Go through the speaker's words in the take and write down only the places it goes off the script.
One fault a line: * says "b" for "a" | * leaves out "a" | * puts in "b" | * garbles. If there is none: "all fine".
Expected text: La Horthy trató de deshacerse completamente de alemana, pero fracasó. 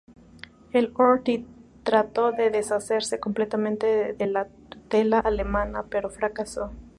* says "El" for "La"
* puts in "la tutela"